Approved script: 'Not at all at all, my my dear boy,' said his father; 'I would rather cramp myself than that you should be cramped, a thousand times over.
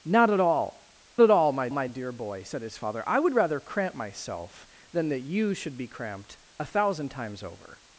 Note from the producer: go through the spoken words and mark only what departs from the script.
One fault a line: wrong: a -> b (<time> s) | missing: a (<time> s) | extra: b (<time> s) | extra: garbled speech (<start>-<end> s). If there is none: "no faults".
no faults